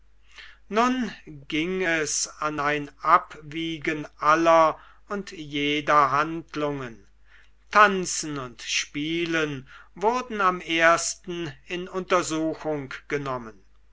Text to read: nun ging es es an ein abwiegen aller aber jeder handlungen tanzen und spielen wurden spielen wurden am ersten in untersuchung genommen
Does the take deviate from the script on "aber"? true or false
true